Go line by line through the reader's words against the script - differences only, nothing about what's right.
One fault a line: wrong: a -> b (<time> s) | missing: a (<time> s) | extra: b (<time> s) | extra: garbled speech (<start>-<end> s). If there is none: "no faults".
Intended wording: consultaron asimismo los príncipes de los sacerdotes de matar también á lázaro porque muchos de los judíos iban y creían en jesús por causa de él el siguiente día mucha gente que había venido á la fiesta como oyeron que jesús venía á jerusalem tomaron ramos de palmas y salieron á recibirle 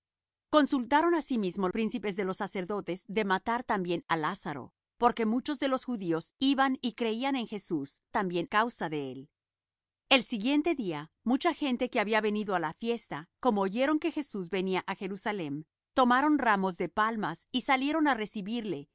missing: los (1.7 s)
wrong: por -> también (8.1 s)